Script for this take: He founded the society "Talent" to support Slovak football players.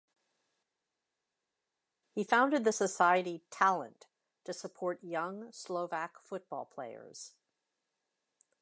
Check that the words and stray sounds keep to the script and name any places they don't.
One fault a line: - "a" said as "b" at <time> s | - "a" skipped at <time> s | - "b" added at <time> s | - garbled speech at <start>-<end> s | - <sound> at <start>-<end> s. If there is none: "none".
- "young" added at 5.0 s